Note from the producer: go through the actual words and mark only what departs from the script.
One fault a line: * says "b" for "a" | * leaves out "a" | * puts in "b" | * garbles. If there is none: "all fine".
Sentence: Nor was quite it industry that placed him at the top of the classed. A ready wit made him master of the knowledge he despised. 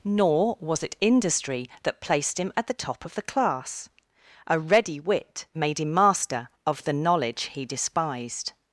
* leaves out "quite"
* says "class" for "classed"